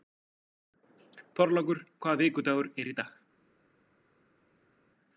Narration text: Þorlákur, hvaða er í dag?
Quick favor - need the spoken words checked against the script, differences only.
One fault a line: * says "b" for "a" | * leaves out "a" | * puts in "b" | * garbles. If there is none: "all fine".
* puts in "vikudagur"